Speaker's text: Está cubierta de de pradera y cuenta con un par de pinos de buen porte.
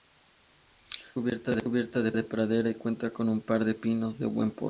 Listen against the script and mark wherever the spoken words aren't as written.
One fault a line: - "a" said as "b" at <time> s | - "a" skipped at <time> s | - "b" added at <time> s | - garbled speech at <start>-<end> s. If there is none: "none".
none